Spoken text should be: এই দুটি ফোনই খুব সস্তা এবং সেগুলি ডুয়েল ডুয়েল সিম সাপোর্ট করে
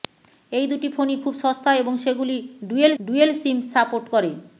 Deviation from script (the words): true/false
false